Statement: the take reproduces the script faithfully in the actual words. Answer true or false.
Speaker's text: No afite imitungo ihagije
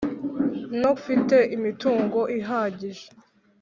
true